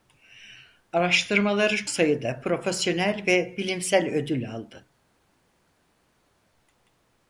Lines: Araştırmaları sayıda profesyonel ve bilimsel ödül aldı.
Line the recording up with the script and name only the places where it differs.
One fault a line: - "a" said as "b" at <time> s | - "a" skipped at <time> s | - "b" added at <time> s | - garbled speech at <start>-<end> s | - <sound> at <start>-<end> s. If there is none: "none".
none